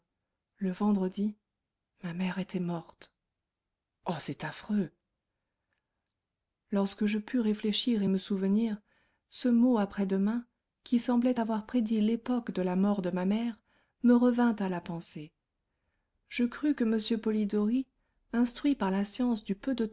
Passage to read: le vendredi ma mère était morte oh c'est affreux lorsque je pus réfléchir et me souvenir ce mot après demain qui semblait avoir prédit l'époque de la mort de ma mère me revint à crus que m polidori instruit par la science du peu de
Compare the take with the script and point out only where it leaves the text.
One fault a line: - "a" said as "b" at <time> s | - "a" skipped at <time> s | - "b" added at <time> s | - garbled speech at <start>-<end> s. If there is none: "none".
- "la pensée je" added at 14.7 s